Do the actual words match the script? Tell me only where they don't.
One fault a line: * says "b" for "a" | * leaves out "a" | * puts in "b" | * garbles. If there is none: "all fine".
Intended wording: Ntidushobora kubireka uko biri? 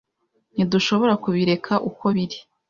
all fine